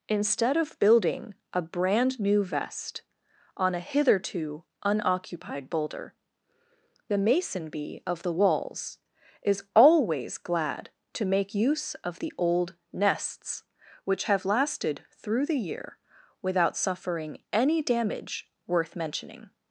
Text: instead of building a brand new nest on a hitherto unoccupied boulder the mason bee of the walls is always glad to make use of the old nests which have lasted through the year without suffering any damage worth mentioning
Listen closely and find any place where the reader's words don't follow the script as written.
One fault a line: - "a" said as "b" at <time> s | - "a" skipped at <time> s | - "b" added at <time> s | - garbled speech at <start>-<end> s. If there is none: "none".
- "nest" said as "vest" at 2.4 s